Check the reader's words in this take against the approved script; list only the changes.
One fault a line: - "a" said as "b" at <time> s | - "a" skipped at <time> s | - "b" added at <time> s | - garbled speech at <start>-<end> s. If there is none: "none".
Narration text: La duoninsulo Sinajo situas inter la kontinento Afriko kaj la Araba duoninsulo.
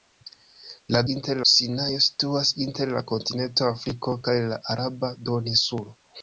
- "duoninsulo" said as "inter" at 1.1 s